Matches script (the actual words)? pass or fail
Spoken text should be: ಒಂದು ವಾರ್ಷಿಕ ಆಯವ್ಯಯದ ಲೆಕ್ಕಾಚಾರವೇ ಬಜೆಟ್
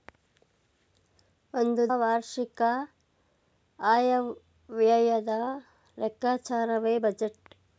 pass